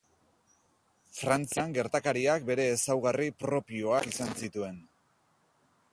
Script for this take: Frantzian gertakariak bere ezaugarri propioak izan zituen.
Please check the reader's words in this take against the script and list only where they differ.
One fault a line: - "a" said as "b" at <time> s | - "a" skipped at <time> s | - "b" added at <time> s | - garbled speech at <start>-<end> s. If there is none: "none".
none